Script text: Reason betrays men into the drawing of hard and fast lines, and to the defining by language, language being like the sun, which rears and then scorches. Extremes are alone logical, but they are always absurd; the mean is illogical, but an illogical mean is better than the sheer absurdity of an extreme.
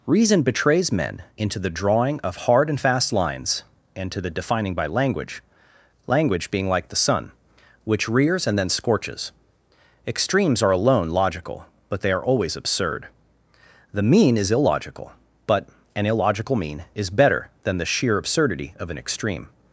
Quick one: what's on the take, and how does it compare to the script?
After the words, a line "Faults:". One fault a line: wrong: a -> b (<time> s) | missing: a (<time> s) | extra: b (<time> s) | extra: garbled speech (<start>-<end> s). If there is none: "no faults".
Reason betrays men into the drawing of hard and fast lines, and to the defining by language, language being like the sun, which rears and then scorches. Extremes are alone logical, but they are always absurd; the mean is illogical, but an illogical mean is better than the sheer absurdity of an extreme.
Faults:
no faults